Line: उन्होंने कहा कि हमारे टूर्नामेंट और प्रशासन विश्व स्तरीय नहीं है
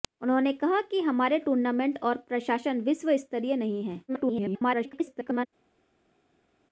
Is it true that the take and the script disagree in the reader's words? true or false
true